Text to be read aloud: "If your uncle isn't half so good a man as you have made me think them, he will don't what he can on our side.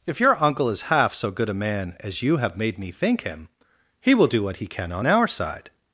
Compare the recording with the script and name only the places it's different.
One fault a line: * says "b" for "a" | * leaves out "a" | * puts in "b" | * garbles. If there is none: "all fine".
* says "is" for "isn't"
* says "him" for "them"
* says "do" for "don't"